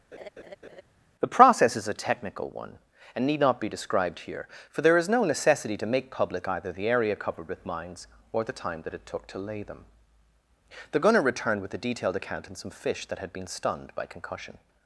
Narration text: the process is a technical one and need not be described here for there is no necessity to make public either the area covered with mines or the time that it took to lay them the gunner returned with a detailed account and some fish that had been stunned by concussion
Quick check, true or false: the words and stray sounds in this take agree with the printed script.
false